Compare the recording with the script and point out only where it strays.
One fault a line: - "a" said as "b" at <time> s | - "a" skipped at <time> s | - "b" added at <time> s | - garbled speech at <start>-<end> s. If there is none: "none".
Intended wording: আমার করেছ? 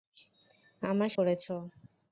none